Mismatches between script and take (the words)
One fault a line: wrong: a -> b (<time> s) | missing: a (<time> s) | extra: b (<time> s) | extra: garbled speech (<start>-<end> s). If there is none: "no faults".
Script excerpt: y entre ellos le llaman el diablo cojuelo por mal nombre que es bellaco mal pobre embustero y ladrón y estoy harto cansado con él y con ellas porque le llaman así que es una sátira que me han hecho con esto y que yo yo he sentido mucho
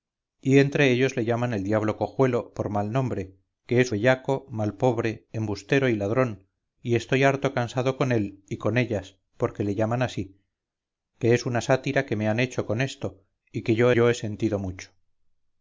no faults